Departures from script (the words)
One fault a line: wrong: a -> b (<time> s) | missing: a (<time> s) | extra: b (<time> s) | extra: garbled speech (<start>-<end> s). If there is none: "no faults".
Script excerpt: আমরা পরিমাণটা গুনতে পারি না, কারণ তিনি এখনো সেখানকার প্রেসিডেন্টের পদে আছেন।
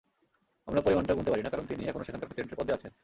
no faults